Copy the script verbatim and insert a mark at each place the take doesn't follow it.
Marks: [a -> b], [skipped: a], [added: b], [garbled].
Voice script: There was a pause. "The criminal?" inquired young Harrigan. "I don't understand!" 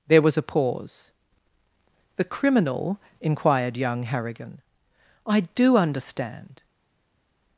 There was a pause. "The criminal?" inquired young Harrigan. "I [don't -> do] understand!"